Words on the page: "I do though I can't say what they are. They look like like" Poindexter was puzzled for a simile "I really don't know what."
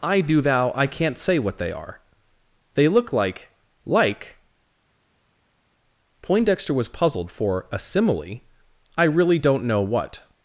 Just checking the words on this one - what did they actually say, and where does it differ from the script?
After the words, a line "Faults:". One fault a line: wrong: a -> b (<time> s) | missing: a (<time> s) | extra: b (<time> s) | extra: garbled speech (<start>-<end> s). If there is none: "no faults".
"I do thou I can't say what they are. They look like like" Poindexter was puzzled for a simile "I really don't know what."
Faults:
wrong: though -> thou (0.4 s)